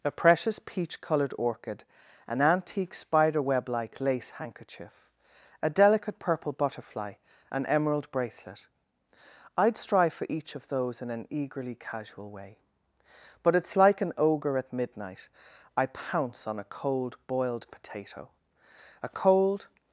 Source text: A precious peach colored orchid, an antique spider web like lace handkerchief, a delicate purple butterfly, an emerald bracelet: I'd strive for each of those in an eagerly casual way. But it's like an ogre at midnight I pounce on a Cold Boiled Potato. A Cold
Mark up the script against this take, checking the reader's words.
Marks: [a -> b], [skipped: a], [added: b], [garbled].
A precious peach colored orchid, an antique spider web like lace handkerchief, a delicate purple butterfly, an emerald bracelet: I'd strive for each of those in an eagerly casual way. But it's like an ogre at midnight I pounce on a Cold Boiled Potato. A Cold